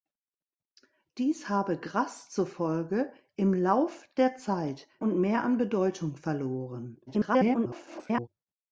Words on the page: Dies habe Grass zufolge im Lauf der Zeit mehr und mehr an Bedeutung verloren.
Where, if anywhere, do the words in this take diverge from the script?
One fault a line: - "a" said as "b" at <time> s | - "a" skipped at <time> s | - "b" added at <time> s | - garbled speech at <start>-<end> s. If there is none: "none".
- "mehr" skipped at 4.9 s
- garbled speech at 7.1-8.3 s